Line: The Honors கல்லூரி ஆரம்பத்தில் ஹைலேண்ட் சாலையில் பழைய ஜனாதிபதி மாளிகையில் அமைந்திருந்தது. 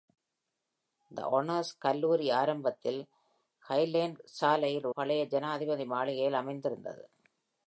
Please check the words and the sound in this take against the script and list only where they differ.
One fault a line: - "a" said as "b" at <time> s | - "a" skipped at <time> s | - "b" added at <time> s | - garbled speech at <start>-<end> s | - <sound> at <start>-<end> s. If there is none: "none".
none